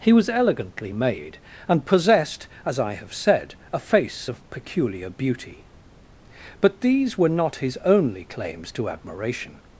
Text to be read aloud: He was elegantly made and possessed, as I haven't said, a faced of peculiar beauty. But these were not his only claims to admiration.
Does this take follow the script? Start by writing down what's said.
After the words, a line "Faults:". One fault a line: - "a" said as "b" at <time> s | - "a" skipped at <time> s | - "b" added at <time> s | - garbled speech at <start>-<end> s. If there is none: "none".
He was elegantly made and possessed, as I have said, a face of peculiar beauty. But these were not his only claims to admiration.
Faults:
- "haven't" said as "have" at 2.9 s
- "faced" said as "face" at 3.8 s